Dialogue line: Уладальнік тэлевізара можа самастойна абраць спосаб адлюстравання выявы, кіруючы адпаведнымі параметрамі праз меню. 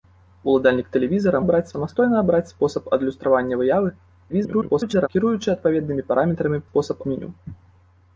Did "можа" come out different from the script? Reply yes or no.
yes